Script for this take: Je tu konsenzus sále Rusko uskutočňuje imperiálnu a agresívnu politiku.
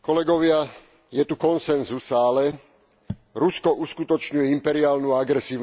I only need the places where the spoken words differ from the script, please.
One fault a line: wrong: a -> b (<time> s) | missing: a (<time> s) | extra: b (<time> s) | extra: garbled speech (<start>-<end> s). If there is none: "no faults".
no faults